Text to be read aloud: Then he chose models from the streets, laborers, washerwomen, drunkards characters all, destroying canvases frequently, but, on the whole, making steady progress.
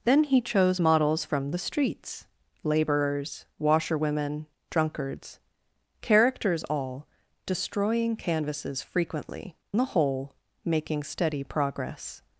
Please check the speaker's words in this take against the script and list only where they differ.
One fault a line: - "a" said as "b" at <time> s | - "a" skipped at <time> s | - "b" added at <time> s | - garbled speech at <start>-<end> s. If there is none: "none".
- "but on" skipped at 9.5 s